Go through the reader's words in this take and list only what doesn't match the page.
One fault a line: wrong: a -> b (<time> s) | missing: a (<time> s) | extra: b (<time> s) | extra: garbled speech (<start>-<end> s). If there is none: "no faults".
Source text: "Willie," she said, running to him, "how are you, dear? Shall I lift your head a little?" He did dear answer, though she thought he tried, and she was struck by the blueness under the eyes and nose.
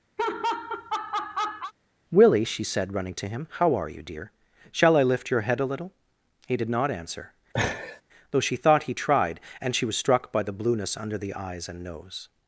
wrong: dear -> not (6.7 s)